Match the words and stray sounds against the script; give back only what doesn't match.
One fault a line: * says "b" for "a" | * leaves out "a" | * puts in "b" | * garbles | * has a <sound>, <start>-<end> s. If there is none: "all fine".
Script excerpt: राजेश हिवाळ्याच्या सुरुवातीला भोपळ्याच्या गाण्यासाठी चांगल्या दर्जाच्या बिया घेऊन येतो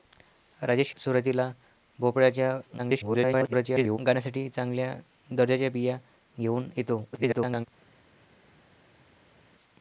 * leaves out "हिवाळ्याच्या"
* garbles
* garbles